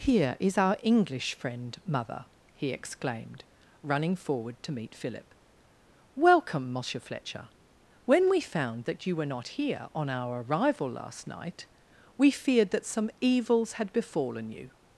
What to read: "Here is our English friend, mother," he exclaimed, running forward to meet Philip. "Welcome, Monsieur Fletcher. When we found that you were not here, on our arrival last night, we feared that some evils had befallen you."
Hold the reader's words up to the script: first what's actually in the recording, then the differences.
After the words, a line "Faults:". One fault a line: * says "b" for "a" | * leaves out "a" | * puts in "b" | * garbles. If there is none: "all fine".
"Here is our English friend, mother," he exclaimed, running forward to meet Philip. "Welcome, Monsieur Fletcher. When we found that you were not here, on our arrival last night, we feared that some evils had befallen you."
Faults:
all fine